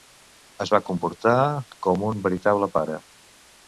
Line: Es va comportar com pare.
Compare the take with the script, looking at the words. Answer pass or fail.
fail